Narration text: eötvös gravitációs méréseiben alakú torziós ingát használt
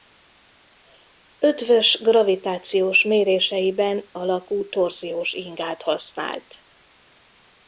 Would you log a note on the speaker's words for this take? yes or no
no